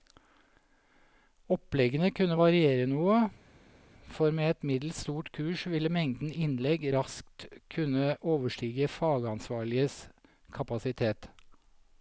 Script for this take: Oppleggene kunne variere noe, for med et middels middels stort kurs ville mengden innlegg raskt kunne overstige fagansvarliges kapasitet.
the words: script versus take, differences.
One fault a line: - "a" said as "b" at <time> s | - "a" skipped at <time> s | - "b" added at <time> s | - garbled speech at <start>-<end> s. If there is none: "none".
- "middels" skipped at 5.0 s